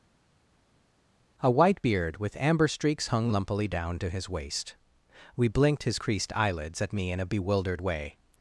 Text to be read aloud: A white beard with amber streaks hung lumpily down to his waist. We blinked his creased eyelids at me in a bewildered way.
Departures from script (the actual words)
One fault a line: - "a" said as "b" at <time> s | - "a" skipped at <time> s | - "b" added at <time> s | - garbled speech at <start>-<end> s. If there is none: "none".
none